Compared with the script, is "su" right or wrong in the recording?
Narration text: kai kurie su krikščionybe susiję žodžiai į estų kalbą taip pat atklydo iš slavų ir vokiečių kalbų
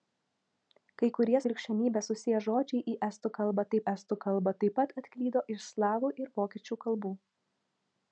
wrong